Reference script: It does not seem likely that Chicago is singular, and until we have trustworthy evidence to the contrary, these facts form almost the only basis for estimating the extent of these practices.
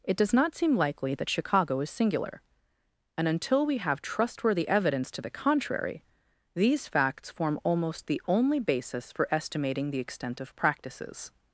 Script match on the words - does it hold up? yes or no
no